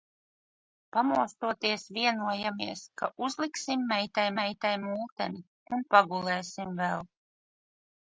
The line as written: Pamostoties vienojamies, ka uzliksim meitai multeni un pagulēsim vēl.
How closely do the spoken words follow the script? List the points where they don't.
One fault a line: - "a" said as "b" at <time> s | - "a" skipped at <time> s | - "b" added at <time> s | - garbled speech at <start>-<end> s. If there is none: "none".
- "meitai" added at 4.4 s